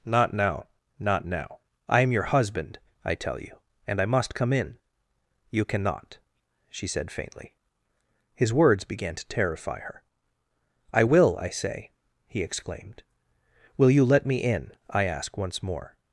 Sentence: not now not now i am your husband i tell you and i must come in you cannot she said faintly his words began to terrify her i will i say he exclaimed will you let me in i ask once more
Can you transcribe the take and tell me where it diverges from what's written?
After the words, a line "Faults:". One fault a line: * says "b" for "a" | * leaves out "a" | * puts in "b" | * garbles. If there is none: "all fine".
not now not now i am your husband i tell you and i must come in you cannot she said faintly his words began to terrify her i will i say he exclaimed will you let me in i ask once more
Faults:
all fine